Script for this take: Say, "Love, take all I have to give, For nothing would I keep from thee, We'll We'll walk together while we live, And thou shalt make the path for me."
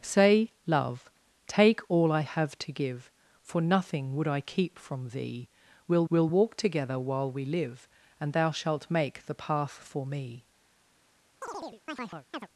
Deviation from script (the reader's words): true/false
false